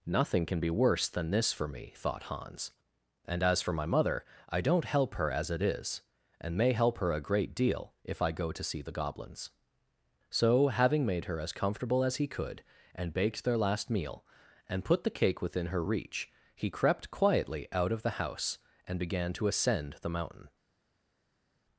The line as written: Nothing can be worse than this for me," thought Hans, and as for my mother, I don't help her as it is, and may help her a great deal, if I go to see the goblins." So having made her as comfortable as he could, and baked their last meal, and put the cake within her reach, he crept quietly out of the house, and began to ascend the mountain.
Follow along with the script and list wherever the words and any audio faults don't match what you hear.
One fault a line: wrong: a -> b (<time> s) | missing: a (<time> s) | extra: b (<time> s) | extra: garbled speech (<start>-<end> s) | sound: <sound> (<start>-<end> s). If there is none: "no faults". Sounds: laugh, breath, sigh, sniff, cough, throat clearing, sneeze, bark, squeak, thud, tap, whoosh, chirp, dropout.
no faults